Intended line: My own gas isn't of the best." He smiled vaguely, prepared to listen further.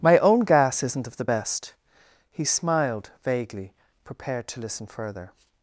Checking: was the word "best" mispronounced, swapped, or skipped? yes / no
no